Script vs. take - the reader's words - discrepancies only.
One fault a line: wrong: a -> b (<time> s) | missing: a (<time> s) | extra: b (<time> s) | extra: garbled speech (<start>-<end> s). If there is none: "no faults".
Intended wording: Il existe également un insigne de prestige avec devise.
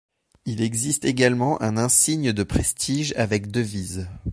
no faults